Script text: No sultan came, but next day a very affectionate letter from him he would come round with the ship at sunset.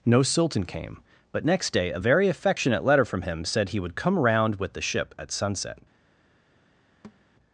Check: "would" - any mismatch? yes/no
no